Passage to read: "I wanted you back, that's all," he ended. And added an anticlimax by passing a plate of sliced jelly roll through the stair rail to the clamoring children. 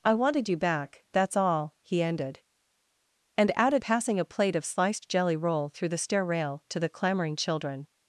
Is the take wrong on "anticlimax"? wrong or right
wrong